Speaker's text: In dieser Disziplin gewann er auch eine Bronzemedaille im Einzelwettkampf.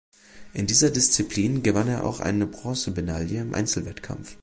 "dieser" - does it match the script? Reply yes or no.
yes